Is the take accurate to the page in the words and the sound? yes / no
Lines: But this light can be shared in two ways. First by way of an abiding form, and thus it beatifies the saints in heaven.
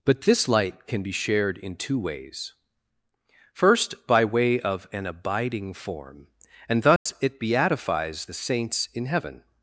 no